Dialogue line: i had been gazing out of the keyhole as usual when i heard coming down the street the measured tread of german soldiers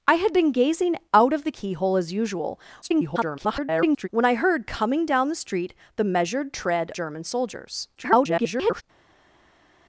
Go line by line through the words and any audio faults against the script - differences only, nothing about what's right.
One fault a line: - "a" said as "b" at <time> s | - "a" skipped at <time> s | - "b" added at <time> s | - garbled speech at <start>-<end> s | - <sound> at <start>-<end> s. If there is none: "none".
- garbled speech at 2.8-4.1 s
- "of" skipped at 6.9 s
- garbled speech at 8.0-8.8 s